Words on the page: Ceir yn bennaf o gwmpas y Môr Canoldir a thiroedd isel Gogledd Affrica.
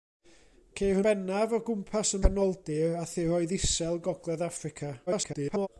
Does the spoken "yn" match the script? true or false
false